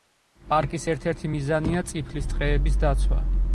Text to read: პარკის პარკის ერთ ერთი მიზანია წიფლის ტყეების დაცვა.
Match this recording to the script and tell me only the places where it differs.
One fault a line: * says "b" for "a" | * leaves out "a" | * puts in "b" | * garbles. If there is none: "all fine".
* leaves out "პარკის"